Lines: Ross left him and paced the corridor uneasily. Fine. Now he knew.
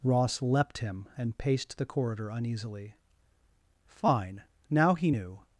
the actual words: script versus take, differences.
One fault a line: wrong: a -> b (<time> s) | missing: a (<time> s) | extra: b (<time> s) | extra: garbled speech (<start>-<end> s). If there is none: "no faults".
wrong: left -> leapt (0.4 s)